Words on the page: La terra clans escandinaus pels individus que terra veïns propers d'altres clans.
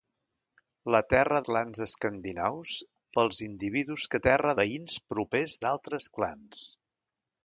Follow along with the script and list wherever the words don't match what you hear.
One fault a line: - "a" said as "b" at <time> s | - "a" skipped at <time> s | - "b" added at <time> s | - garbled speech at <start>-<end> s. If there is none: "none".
none